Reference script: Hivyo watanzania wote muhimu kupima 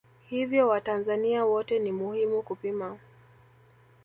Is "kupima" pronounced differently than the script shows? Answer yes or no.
no